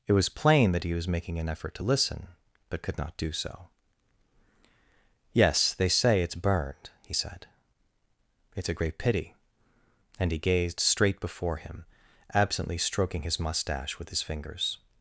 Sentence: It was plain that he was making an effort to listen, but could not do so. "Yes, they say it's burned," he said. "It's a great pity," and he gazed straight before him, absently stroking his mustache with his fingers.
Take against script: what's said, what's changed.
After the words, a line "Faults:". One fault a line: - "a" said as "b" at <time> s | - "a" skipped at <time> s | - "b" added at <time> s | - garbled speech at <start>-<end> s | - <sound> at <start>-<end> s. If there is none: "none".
It was plain that he was making an effort to listen, but could not do so. "Yes, they say it's burned," he said. "It's a great pity," and he gazed straight before him, absently stroking his mustache with his fingers.
Faults:
none